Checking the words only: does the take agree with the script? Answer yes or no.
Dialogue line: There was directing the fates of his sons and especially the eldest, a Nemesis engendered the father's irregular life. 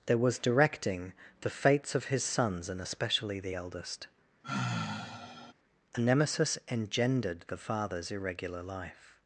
yes